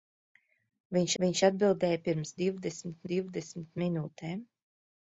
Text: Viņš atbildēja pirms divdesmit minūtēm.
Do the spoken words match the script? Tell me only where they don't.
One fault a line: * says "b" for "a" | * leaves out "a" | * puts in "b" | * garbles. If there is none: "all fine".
* puts in "viņš"
* puts in "divdesmit"